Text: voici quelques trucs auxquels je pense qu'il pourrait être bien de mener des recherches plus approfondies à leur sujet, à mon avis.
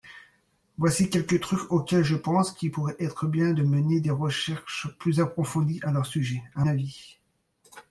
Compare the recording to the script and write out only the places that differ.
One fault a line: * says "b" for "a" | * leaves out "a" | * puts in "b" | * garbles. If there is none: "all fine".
* leaves out "mon"